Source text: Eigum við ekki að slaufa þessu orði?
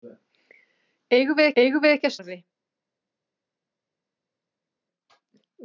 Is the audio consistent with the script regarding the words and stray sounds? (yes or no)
no